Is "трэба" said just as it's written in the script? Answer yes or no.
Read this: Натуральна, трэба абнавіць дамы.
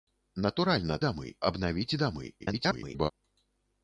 no